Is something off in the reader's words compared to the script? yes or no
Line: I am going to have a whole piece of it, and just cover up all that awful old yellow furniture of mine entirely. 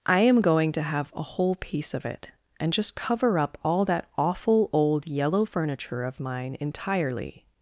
no